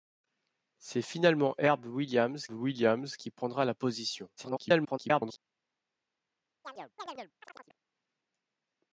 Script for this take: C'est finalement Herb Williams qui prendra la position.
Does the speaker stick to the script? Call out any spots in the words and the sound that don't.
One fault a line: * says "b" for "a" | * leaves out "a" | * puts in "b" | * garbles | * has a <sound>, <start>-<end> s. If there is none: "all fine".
* puts in "Williams"
* garbles
* has a chirp, 6.6-7.8 s